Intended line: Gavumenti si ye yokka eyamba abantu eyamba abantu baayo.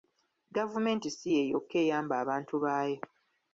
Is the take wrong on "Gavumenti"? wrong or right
right